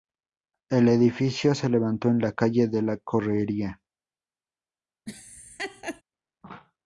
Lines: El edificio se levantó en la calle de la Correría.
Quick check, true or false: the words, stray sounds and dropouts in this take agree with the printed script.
false